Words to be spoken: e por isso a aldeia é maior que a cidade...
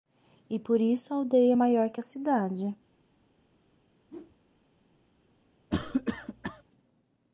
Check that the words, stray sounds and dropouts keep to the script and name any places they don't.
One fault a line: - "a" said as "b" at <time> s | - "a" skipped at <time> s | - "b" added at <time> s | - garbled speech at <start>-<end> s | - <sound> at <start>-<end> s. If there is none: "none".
- whoosh at 4.1-4.4 s
- cough at 5.7-6.6 s